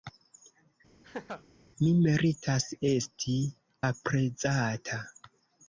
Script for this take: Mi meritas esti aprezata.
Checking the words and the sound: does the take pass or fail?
fail